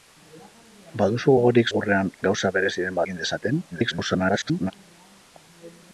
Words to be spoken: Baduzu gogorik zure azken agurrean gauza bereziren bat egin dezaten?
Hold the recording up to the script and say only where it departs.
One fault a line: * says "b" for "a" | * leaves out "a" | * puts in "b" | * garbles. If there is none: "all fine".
* leaves out "zure azken"
* leaves out "bat"
* garbles